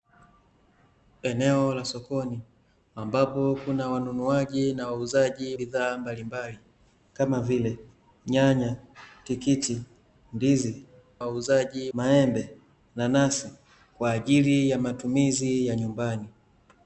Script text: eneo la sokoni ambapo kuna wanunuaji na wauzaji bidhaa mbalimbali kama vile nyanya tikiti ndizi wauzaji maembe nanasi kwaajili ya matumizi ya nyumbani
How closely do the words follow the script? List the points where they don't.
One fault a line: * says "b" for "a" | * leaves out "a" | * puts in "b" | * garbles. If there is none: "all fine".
all fine